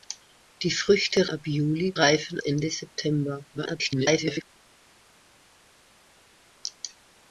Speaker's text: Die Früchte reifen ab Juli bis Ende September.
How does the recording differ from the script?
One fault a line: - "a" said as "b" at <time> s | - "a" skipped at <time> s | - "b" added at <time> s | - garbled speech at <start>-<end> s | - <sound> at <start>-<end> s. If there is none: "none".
- "reifen" skipped at 1.3 s
- "bis" said as "reifen" at 2.0 s
- garbled speech at 3.5-4.4 s